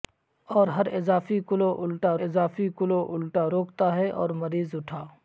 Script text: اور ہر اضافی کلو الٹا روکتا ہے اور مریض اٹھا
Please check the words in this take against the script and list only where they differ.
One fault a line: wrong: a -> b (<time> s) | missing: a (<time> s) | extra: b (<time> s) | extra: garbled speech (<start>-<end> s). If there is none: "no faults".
extra: اضافی کلو الٹا (2.2 s)